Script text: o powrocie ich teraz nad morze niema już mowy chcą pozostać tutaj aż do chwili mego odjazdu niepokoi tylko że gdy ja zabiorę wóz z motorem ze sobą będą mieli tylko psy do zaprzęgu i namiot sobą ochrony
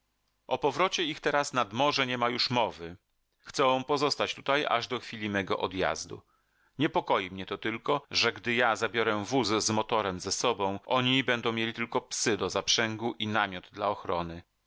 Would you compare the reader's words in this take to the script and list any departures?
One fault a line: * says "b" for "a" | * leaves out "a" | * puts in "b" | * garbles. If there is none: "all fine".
* puts in "mnie to"
* puts in "oni"
* says "dla" for "sobą"